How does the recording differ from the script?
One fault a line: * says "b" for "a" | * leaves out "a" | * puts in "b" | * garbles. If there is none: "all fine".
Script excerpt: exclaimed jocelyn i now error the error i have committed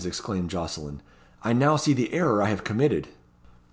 * says "see" for "error"